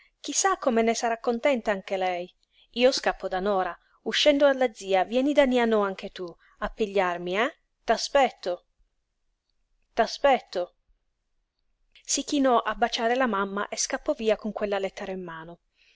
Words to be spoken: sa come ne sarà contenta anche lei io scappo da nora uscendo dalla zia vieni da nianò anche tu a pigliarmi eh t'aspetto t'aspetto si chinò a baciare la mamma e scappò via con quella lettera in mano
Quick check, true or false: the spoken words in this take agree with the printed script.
true